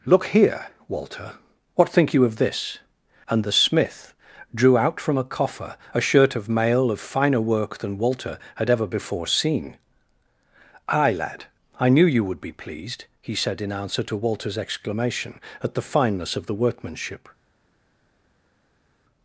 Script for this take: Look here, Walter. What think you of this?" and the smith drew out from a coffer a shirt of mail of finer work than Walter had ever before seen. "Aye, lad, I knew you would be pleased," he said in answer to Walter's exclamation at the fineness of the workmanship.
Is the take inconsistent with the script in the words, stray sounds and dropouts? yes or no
no